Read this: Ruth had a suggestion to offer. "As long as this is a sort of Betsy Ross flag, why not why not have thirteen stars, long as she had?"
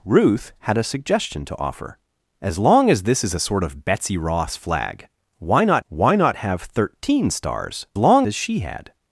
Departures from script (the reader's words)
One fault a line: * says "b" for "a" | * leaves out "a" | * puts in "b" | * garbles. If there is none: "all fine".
all fine